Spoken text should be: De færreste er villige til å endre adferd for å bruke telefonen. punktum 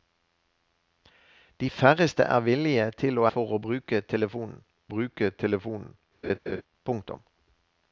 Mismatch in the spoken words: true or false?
true